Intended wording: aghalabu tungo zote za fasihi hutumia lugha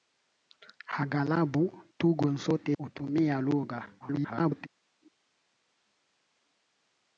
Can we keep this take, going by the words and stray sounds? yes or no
no